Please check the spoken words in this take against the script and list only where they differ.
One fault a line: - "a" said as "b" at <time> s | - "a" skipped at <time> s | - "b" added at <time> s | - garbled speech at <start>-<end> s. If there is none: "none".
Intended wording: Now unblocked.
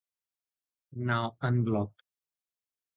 none